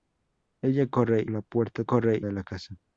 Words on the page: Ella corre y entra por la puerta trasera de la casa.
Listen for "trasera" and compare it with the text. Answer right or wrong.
wrong